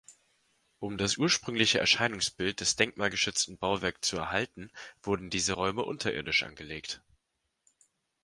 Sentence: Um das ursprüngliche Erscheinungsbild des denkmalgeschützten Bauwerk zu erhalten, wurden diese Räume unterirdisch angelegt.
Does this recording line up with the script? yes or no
yes